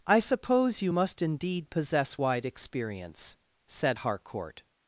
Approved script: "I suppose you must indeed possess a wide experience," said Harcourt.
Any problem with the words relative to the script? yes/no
yes